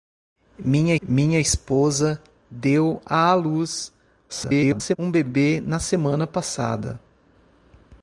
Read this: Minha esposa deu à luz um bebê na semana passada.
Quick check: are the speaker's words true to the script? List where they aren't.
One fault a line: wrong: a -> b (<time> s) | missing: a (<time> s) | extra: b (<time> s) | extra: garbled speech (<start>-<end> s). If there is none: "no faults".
extra: minha (1.1 s)
extra: garbled speech (4.3-5.0 s)